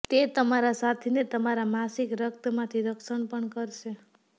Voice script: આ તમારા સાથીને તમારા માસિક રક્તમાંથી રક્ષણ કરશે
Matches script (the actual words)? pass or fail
fail